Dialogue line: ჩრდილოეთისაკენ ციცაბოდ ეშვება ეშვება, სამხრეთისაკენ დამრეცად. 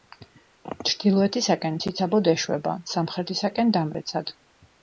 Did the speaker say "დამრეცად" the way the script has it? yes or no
yes